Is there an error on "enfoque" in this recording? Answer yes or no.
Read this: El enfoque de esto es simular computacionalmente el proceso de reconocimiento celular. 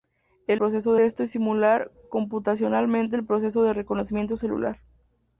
yes